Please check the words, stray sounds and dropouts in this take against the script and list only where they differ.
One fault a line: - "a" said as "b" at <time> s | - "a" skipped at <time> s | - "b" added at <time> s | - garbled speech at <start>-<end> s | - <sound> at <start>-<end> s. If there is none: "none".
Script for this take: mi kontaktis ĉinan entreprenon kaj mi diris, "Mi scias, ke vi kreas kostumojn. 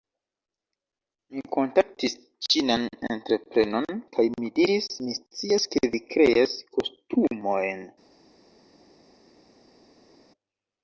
none